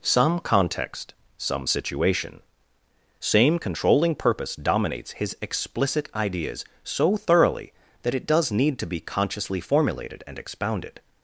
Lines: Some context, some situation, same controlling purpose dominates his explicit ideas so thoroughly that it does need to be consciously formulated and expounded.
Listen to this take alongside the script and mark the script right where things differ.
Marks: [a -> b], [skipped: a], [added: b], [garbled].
Some context, some situation, same controlling purpose dominates his explicit ideas so thoroughly that it does need to be consciously formulated and expounded.